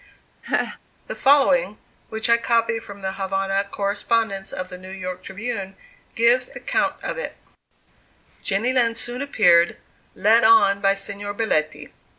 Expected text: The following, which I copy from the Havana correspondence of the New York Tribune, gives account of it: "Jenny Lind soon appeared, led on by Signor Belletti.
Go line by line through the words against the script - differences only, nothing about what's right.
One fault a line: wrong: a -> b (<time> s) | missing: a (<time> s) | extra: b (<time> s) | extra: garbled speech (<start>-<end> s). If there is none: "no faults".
no faults